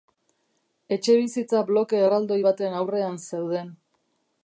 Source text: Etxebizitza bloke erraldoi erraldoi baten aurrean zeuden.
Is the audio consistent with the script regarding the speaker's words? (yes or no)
no